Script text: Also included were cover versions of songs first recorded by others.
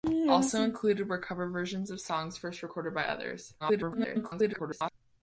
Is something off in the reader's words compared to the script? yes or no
yes